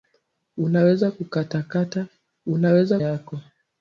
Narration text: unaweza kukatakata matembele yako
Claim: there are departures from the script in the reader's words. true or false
true